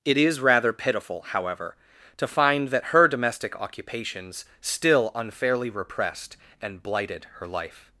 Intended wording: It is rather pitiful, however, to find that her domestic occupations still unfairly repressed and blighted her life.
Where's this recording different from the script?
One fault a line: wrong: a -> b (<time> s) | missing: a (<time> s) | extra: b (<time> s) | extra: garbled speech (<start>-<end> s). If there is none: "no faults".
no faults